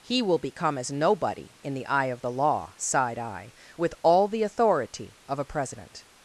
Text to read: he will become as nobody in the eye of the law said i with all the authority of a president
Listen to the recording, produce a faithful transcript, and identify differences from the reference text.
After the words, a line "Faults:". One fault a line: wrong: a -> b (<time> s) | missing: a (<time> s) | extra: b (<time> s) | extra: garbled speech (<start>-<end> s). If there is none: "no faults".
he will become as nobody in the eye of the law sighed i with all the authority of a president
Faults:
wrong: said -> sighed (2.8 s)